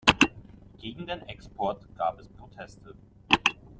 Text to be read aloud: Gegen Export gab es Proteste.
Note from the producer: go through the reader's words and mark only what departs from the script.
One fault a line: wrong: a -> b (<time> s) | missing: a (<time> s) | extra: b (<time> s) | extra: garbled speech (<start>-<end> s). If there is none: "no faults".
extra: den (1.1 s)